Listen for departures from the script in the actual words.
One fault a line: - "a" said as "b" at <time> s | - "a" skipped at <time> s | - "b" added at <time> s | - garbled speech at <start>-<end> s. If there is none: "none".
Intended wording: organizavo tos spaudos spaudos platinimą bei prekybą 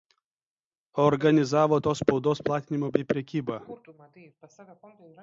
- "spaudos" skipped at 2.4 s